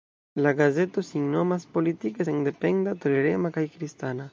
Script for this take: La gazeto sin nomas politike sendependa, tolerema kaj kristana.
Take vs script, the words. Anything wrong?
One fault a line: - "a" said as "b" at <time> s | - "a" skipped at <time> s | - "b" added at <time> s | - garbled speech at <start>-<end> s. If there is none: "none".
none